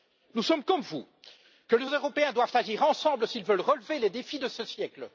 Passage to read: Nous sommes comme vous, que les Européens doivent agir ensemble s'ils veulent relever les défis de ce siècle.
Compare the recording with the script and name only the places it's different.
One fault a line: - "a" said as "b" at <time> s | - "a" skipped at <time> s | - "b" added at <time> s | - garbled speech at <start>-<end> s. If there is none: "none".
none